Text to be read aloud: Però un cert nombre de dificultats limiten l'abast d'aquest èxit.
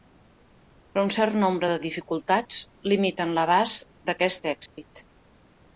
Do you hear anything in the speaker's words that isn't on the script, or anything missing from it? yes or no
no